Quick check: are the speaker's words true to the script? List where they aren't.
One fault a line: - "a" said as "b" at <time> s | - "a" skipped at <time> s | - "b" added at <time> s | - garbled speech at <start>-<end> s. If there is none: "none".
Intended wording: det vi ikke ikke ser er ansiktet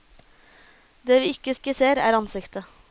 none